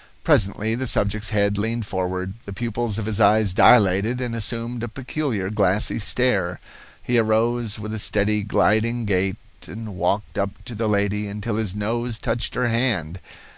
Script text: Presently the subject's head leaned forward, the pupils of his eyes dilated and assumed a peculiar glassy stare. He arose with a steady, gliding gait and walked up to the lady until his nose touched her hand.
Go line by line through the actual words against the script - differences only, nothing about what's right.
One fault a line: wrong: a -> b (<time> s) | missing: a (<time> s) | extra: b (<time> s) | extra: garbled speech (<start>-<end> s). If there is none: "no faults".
no faults